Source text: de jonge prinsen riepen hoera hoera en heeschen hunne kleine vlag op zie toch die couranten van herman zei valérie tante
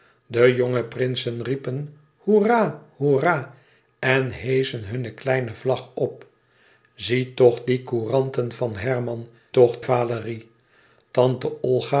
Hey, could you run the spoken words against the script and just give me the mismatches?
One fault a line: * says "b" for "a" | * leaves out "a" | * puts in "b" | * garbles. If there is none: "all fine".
* says "toch" for "zei"